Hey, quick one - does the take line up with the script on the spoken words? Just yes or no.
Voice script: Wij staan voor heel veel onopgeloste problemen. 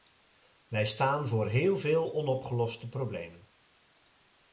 yes